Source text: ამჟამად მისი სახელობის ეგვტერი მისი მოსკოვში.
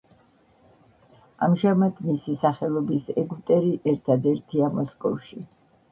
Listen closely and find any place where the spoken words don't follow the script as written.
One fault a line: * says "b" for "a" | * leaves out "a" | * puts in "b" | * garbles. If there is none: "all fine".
* says "ერთადერთია" for "მისი"